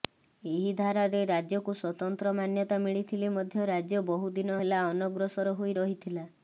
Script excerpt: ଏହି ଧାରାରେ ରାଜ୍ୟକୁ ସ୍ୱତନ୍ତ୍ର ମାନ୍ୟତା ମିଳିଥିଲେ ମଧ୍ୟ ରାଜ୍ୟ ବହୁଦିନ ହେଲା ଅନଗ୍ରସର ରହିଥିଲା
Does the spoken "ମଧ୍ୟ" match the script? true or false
true